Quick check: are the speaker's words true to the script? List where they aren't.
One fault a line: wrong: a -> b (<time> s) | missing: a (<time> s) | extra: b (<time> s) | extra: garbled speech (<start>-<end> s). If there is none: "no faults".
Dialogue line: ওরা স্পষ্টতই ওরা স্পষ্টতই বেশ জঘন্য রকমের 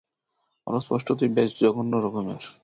missing: ওরা স্পষ্টতই (1.3 s)